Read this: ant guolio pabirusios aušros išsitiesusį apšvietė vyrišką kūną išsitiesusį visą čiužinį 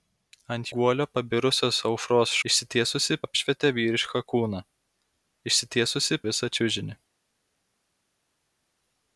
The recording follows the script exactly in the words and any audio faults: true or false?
true